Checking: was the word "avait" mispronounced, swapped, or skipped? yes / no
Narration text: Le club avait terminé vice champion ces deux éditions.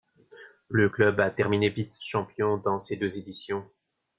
yes